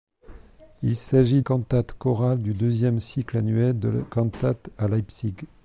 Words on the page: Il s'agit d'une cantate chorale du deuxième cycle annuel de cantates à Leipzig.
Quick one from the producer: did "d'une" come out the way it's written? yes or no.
no